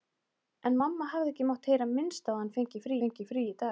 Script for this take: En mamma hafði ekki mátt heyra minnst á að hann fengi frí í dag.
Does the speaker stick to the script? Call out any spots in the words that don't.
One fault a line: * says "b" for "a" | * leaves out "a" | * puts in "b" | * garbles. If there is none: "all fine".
* puts in "fengi frí"